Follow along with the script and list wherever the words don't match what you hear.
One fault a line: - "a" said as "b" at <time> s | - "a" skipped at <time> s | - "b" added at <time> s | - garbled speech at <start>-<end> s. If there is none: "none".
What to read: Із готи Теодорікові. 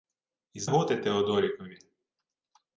none